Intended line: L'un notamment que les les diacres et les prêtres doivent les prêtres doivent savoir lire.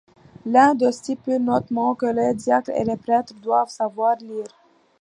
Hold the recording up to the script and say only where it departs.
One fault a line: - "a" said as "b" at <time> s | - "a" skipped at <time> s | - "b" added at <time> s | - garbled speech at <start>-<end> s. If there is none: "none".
- "d'eux stipule" added at 0.7 s
- "les" skipped at 2.3 s
- "les prêtres doivent" skipped at 3.7 s